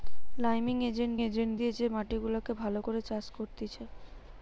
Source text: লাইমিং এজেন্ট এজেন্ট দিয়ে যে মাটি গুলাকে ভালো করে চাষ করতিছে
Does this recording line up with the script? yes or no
yes